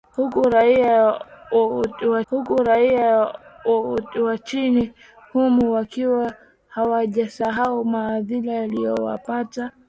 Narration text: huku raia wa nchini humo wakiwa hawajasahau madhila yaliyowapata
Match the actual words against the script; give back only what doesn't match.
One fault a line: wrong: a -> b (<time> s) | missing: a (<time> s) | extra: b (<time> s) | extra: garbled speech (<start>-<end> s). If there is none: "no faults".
extra: huku raia wa (2.3 s)